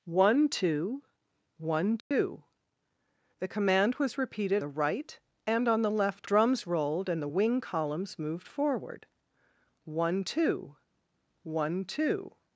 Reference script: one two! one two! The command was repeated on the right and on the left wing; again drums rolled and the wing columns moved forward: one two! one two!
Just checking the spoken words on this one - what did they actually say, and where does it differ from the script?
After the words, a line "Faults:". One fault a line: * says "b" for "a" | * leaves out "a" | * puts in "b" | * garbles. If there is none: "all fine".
one two! one two! The command was repeated the right and on the left drums rolled and the wing columns moved forward: one two! one two!
Faults:
* leaves out "on"
* leaves out "wing again"